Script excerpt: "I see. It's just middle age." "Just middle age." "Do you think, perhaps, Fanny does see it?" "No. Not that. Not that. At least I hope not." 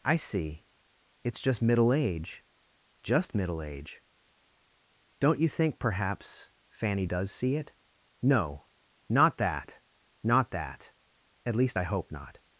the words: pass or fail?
fail